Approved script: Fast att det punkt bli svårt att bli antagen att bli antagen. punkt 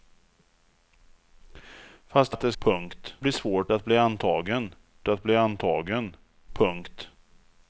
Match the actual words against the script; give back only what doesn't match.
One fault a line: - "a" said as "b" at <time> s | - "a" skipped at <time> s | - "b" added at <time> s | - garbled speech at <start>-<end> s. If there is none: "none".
none